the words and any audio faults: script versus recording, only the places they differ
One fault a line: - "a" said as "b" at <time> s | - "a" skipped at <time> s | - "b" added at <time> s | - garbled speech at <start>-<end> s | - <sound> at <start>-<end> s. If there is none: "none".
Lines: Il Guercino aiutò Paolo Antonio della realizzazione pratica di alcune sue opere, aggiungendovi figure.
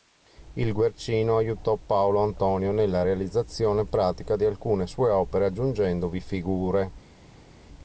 - "della" said as "nella" at 2.7 s